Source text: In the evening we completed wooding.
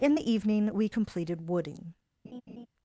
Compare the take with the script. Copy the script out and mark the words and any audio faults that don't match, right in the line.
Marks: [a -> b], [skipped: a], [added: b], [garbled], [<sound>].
In the evening we completed wooding. [laugh]